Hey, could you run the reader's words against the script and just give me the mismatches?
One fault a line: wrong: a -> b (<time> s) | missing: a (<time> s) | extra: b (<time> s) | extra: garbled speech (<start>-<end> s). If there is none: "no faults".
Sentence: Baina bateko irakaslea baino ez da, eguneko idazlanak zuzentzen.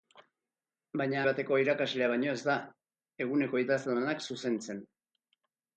no faults